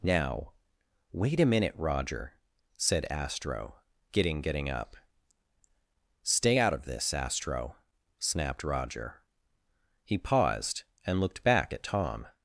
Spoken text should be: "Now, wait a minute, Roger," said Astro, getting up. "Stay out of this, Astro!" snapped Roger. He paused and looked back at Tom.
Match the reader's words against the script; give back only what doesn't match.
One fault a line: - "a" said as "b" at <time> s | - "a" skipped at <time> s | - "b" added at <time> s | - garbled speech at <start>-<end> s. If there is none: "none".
- "getting" added at 4.4 s